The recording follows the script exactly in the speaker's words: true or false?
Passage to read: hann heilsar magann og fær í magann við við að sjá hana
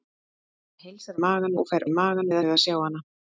true